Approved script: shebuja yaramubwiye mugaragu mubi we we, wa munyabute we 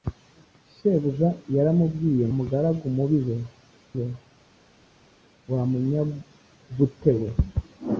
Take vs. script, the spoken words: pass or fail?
pass